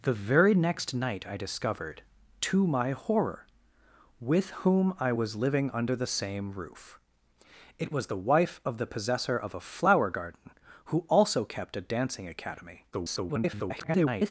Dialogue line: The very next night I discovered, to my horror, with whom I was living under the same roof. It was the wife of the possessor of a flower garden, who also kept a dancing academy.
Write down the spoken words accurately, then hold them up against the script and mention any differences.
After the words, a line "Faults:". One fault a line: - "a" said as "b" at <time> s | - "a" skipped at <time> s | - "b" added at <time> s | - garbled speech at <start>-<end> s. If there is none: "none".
The very next night I discovered, to my horror, with whom I was living under the same roof. It was the wife of the possessor of a flower garden, who also kept a dancing academy. [garbled]
Faults:
- garbled speech at 12.9-14.3 s